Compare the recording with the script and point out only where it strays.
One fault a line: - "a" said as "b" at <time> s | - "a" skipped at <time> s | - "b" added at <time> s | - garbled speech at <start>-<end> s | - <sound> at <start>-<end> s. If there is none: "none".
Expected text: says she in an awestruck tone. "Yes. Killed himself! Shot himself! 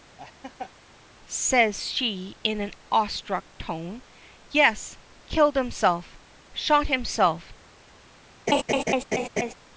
- laugh at 0.2-0.7 s
- laugh at 8.5-9.5 s